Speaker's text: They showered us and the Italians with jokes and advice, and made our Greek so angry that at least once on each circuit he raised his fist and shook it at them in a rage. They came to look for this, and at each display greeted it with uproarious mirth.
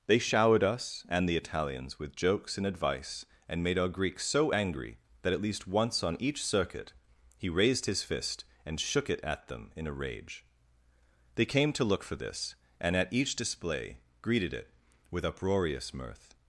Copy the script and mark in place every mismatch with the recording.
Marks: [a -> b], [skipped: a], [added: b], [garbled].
They showered us and the Italians with jokes and advice, and made our Greek so angry that at least once on each circuit he raised his fist and shook it at them in a rage. They came to look for this, and at each display greeted it with uproarious mirth.